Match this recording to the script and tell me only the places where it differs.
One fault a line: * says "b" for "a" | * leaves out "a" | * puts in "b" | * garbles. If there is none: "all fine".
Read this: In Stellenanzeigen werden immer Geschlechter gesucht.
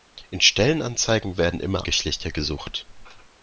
all fine